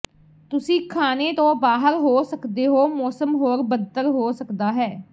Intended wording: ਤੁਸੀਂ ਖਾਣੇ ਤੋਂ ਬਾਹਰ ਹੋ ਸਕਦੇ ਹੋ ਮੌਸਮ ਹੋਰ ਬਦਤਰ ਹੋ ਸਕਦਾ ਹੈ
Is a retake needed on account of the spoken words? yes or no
no